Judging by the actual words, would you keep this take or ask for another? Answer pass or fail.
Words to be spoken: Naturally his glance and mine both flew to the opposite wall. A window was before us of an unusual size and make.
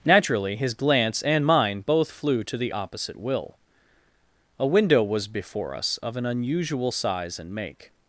fail